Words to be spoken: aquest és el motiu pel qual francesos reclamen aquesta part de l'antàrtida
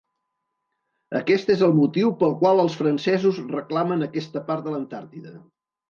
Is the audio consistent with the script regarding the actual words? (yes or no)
no